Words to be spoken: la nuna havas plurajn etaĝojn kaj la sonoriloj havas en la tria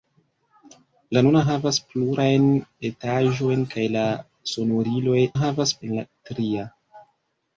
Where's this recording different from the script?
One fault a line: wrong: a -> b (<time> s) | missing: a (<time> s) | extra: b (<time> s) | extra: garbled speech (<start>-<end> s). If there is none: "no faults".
no faults